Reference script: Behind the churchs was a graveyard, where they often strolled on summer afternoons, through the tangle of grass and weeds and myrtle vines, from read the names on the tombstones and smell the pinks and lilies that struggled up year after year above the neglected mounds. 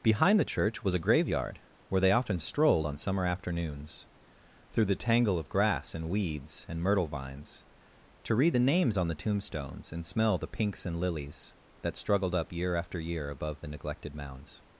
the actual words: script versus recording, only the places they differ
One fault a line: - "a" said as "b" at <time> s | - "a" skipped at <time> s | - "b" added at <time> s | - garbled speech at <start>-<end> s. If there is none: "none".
- "churchs" said as "church" at 0.5 s
- "from" said as "to" at 8.2 s